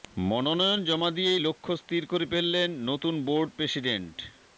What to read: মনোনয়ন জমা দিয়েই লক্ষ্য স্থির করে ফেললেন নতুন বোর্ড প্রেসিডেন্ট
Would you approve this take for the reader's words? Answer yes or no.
yes